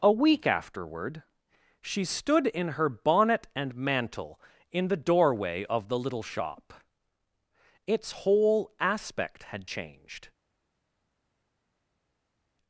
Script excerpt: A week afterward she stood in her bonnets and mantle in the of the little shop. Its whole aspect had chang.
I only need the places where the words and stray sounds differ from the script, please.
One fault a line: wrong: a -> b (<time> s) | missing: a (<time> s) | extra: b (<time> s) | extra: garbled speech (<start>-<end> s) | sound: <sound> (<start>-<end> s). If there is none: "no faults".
wrong: bonnets -> bonnet (2.9 s)
extra: doorway (5.0 s)
wrong: chang -> changed (9.7 s)